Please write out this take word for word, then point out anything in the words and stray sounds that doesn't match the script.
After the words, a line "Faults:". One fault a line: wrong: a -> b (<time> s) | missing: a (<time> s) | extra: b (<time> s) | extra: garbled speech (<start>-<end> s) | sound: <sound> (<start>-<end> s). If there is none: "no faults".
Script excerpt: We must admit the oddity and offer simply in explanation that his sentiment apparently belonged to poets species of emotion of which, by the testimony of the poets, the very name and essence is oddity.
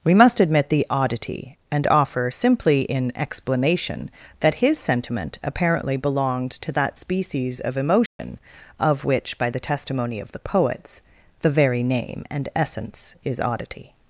We must admit the oddity and offer simply in explanation that his sentiment apparently belonged to that species of emotion of which, by the testimony of the poets, the very name and essence is oddity.
Faults:
wrong: poets -> that (6.7 s)
sound: dropout (8.1-8.2 s)